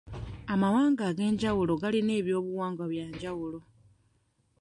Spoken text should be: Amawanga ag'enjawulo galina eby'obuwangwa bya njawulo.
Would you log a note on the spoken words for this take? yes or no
no